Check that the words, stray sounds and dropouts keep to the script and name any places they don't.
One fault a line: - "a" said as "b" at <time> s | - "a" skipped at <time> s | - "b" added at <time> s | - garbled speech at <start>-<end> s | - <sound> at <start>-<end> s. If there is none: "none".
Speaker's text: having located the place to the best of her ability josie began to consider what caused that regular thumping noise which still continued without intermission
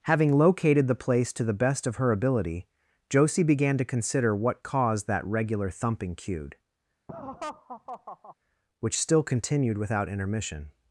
- "noise" said as "cued" at 6.2 s
- laugh at 7.1-8.4 s